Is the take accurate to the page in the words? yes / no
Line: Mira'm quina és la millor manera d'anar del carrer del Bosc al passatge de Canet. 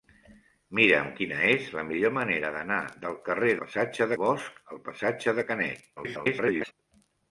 no